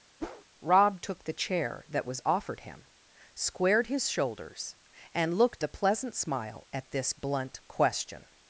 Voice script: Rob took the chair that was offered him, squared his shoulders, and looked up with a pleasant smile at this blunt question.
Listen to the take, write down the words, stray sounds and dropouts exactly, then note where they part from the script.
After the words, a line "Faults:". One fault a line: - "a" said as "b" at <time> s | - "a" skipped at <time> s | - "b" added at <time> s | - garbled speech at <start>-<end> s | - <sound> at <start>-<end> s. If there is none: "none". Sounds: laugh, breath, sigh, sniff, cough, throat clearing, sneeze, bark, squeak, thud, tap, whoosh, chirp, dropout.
Rob took the chair that was offered him, squared his shoulders, and looked a pleasant smile at this blunt question.
Faults:
- whoosh at 0.2-0.4 s
- "up with" skipped at 5.6 s